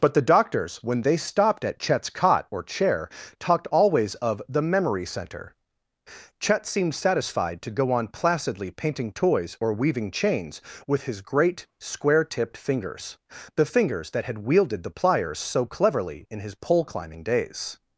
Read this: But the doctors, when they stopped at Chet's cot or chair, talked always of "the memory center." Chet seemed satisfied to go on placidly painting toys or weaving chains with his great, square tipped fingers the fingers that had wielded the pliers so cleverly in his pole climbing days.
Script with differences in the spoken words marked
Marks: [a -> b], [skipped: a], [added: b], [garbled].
But the doctors, when they stopped at Chet's cot or chair, talked always of "the memory center." Chet seemed satisfied to go on placidly painting toys or weaving chains with his great, square tipped fingers the fingers that had wielded the pliers so cleverly in his pole climbing days.